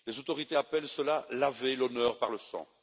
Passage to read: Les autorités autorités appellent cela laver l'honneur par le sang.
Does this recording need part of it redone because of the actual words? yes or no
yes